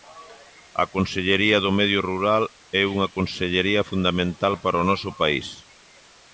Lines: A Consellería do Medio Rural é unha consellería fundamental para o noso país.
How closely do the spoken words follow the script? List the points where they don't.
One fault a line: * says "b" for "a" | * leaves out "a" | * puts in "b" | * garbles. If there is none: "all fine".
all fine